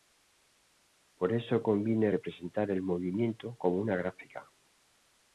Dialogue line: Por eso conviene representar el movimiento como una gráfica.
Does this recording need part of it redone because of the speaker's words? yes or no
no